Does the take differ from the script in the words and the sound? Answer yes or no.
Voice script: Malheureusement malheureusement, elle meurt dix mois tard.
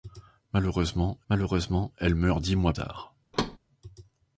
yes